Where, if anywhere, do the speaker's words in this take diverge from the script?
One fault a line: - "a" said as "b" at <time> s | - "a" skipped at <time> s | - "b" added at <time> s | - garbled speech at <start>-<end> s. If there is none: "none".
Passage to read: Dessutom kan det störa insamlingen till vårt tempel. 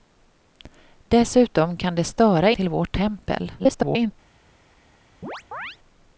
- "insamlingen" skipped at 2.5 s
- garbled speech at 3.6-4.1 s